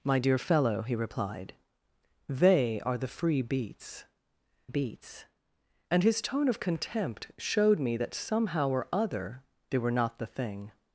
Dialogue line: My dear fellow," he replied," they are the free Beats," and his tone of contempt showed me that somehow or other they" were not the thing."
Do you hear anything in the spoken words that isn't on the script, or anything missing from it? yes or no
yes